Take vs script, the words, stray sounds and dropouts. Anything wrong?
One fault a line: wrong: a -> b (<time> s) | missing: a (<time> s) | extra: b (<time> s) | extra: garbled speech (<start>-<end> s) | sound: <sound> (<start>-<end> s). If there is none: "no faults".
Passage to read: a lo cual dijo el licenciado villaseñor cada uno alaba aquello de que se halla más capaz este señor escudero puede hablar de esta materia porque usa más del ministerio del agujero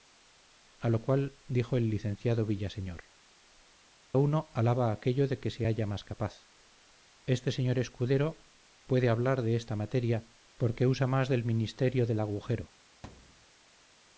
missing: cada (3.0 s)
sound: thud (13.0-13.5 s)